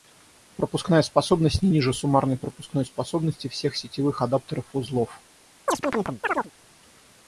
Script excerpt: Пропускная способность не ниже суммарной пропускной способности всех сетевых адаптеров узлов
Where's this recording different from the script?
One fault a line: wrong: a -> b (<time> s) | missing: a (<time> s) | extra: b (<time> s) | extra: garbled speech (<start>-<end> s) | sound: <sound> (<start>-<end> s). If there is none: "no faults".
sound: chirp (5.7-6.5 s)